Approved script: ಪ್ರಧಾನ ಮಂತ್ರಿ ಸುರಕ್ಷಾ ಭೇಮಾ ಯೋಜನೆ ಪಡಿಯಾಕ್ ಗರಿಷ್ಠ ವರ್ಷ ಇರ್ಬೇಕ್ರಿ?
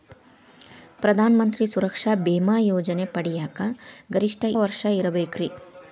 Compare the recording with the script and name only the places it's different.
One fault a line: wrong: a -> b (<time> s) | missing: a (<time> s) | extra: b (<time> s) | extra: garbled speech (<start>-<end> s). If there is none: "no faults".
no faults